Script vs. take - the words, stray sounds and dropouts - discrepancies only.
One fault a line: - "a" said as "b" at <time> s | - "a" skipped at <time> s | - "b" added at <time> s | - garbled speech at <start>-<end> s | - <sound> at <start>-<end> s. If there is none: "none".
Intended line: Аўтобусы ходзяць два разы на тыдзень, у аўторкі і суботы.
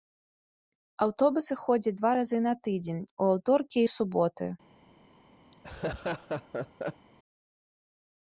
- laugh at 5.5-7.1 s